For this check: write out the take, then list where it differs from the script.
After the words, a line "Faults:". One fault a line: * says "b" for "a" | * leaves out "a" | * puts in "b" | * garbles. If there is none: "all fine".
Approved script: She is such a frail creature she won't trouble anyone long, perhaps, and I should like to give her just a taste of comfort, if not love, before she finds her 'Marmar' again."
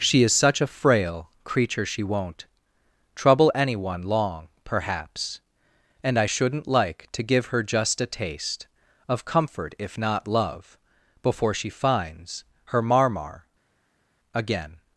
She is such a frail creature she won't trouble anyone long, perhaps, and I shouldn't like to give her just a taste of comfort, if not love, before she finds her 'Marmar' again."
Faults:
* says "shouldn't" for "should"